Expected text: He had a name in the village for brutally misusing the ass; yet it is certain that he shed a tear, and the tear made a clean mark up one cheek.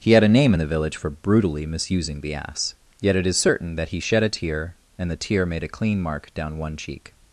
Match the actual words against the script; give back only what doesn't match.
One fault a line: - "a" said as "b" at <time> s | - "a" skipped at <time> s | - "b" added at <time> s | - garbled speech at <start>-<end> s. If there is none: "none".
- "up" said as "down" at 6.3 s